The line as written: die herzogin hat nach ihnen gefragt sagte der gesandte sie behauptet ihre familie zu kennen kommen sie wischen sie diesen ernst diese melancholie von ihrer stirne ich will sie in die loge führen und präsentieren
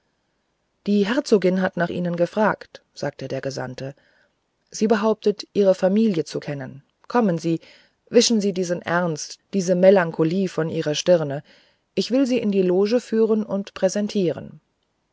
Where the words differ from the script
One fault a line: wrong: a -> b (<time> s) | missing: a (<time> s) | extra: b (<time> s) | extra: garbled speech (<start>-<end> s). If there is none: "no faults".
no faults